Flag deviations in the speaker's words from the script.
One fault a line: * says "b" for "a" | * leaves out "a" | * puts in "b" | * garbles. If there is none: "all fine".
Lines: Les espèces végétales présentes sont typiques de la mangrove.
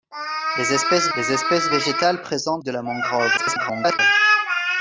* puts in "les espèces"
* leaves out "sont typiques"
* garbles